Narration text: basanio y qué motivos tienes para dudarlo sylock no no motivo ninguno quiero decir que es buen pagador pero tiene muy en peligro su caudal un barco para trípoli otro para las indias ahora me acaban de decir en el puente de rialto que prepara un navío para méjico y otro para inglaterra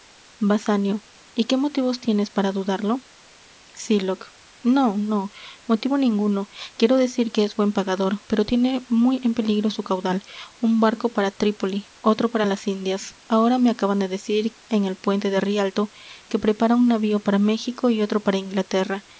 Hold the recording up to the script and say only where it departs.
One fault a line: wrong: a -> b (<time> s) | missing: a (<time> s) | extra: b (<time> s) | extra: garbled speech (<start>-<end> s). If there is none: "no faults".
no faults